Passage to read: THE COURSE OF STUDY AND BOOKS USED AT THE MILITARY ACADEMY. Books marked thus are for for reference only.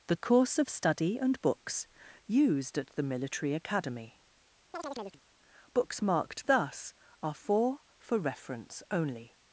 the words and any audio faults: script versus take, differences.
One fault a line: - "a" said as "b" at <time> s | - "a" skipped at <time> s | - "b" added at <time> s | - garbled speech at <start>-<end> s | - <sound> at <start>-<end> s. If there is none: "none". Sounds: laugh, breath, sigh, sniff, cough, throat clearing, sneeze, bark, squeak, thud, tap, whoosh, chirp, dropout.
- chirp at 4.7-5.2 s